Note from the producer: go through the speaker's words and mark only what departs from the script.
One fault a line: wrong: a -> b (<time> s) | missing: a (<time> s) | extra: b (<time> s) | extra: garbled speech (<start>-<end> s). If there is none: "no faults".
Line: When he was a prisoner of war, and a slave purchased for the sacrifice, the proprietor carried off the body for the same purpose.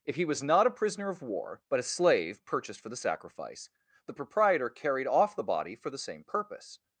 wrong: When -> If (0.0 s)
extra: not (0.4 s)
wrong: and -> but (1.7 s)